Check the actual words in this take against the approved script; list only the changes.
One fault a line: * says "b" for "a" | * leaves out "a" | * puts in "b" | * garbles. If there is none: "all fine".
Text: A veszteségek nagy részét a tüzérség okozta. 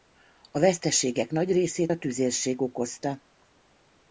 all fine